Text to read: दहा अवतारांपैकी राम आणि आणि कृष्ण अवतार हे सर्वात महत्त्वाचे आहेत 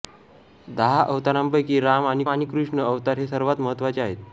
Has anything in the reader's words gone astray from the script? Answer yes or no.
no